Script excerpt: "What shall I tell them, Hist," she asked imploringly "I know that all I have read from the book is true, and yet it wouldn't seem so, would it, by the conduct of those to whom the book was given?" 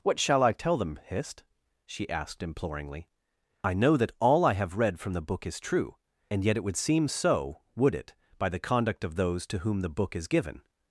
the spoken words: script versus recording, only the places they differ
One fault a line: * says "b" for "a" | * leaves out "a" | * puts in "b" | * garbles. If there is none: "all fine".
* says "would" for "wouldn't"
* says "is" for "was"